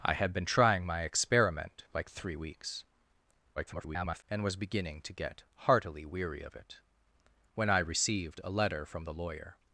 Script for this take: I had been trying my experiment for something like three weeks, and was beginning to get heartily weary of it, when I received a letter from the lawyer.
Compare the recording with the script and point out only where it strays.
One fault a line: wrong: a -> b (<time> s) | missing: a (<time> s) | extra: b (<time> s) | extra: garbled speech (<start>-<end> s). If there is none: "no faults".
missing: for something (1.8 s)
extra: garbled speech (3.6-4.2 s)